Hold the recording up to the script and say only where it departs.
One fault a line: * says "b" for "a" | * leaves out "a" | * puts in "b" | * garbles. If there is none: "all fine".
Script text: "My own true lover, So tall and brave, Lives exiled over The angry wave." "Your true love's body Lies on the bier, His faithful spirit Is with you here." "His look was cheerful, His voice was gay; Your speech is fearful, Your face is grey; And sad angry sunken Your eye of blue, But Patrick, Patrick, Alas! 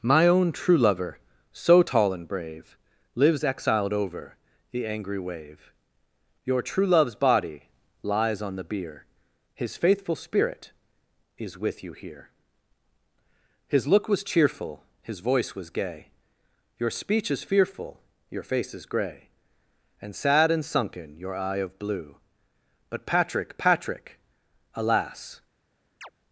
* says "and" for "angry"